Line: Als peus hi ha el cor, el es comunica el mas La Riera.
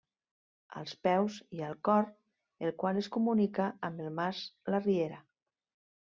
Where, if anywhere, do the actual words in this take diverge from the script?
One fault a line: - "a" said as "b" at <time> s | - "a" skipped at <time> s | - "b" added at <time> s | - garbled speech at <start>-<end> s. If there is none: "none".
- "qual" added at 2.8 s
- "amb" added at 3.9 s